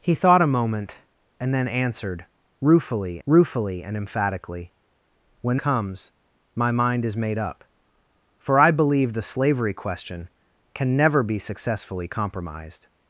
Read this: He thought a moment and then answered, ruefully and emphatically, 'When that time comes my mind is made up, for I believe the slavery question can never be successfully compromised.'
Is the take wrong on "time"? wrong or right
wrong